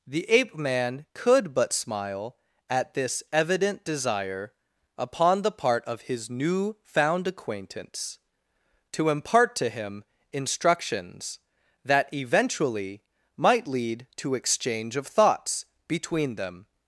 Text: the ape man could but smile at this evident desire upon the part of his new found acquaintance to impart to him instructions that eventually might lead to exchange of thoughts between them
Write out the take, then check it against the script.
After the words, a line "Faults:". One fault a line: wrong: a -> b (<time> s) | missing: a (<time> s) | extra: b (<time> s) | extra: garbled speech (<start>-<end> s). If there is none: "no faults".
the ape man could but smile at this evident desire upon the part of his new found acquaintance to impart to him instructions that eventually might lead to exchange of thoughts between them
Faults:
no faults